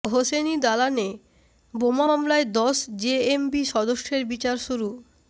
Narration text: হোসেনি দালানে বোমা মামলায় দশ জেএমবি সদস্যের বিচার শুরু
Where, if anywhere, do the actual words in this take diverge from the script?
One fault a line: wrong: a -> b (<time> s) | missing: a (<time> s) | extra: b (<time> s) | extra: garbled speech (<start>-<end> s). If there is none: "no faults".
no faults